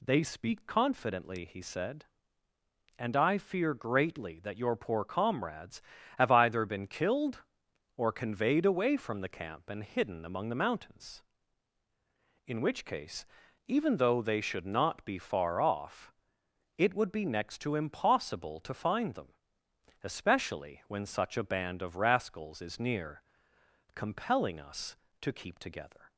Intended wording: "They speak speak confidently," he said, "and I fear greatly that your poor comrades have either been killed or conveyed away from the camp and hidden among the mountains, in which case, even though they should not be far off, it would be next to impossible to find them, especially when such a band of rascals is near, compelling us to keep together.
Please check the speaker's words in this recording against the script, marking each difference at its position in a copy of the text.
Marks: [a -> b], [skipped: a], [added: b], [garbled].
"They speak [skipped: speak] confidently," he said, "and I fear greatly that your poor comrades have either been killed or conveyed away from the camp and hidden among the mountains, in which case, even though they should not be far off, it would be next to impossible to find them, especially when such a band of rascals is near, compelling us to keep together.